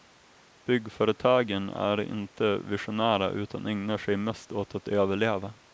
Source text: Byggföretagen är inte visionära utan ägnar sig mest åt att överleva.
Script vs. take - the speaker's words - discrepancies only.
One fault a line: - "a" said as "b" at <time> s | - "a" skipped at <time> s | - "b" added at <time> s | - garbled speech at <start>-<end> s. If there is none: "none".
none